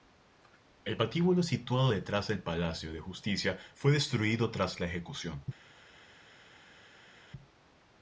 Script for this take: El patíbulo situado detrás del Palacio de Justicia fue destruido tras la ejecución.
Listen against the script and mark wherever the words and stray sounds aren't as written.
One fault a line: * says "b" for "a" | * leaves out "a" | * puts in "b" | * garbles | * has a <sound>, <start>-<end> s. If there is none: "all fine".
all fine